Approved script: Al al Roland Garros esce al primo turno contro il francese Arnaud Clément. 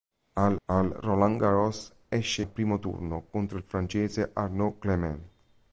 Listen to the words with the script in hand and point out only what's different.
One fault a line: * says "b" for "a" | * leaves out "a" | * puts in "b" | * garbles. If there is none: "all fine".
all fine